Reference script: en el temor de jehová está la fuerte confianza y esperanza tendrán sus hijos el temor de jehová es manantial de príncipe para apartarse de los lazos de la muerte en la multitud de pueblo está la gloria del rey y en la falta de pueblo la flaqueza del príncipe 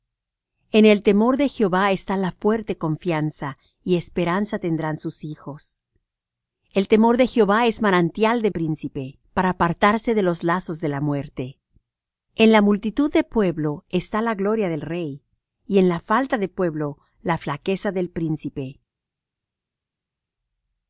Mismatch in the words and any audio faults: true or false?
false